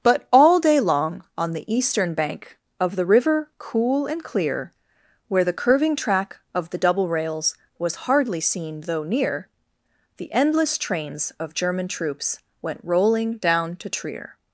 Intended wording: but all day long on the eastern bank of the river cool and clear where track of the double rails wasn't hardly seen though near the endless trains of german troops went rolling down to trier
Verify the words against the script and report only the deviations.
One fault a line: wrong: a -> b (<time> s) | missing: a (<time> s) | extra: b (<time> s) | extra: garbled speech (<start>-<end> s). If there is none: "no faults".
extra: the curving (5.4 s)
wrong: wasn't -> was (7.8 s)